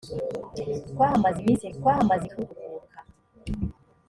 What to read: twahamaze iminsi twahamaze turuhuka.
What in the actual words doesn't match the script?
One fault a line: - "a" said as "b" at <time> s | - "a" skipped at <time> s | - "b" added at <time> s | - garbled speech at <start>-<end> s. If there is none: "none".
none